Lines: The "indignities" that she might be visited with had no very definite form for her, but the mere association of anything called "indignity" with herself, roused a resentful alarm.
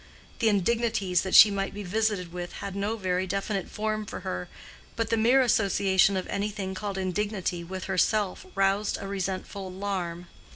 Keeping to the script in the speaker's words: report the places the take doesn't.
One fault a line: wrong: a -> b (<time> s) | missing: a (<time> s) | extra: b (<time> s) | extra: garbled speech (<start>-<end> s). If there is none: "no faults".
no faults